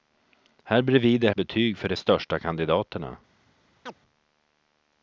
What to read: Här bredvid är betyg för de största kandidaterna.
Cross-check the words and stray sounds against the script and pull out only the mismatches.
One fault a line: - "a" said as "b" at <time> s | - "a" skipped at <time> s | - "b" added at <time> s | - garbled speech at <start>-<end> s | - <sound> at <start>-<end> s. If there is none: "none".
- chirp at 3.9-3.9 s